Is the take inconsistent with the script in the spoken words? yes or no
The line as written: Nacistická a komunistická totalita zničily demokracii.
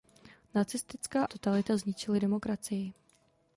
yes